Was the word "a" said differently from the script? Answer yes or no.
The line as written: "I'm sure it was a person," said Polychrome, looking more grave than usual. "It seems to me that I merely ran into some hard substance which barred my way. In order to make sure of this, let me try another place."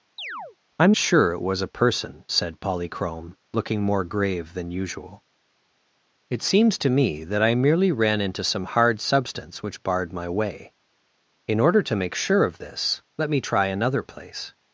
no